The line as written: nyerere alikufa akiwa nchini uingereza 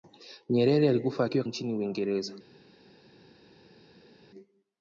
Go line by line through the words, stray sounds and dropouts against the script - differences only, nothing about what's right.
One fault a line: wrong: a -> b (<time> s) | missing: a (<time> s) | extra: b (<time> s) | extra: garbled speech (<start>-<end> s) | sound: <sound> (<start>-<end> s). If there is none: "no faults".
no faults